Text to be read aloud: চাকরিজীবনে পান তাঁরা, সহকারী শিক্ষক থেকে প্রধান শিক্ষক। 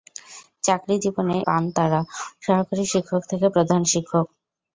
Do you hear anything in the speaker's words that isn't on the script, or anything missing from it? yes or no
no